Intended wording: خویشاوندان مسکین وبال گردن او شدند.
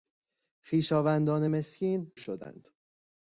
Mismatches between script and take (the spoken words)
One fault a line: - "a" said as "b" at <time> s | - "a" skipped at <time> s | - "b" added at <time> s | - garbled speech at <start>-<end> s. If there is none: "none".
- "وبال گردن او" skipped at 2.1 s